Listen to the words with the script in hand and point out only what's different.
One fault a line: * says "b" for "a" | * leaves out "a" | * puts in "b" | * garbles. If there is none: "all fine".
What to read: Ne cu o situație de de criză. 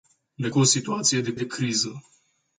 all fine